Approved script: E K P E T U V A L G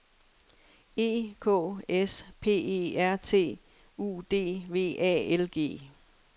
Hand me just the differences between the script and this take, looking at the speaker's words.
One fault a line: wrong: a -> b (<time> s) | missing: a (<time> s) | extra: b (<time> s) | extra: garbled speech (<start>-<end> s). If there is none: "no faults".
extra: S (1.9 s)
extra: R (3.0 s)
extra: D (4.3 s)